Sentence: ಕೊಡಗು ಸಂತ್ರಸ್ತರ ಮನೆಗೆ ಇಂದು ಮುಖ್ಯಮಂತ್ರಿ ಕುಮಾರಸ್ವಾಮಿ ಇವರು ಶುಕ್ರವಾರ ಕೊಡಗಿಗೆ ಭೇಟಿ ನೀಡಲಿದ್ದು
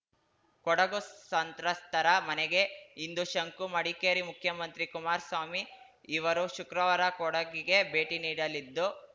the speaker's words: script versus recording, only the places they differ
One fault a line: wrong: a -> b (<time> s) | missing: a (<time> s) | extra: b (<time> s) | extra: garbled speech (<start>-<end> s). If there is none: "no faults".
extra: ಶಂಕು ಮಡಿಕೇರಿ (3.2 s)